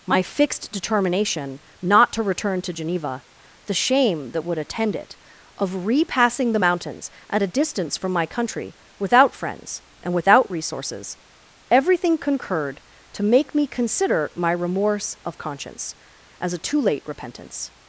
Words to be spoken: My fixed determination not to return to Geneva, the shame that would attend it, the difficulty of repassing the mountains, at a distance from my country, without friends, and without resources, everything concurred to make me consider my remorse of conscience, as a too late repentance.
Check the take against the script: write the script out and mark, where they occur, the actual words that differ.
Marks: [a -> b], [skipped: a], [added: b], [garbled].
My fixed determination not to return to Geneva, the shame that would attend it, [skipped: the difficulty] of repassing the mountains, at a distance from my country, without friends, and without resources, everything concurred to make me consider my remorse of conscience, as a too late repentance.